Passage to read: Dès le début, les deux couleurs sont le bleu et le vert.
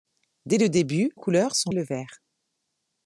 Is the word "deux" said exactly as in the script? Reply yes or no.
no